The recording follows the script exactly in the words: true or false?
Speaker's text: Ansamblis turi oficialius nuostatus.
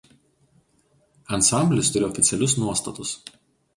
true